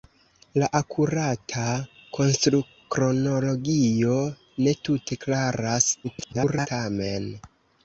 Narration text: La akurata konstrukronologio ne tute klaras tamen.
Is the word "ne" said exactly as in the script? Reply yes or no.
yes